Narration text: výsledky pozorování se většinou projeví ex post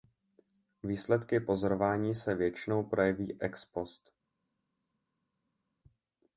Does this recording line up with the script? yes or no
yes